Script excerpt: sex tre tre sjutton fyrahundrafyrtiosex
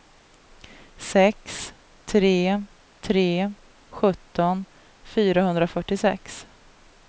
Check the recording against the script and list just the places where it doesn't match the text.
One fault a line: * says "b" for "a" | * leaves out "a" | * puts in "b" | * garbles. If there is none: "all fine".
all fine